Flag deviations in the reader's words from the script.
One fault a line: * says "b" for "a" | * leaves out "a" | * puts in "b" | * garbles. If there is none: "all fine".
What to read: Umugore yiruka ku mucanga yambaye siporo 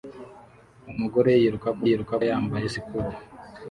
* says "yiruka" for "mucanga"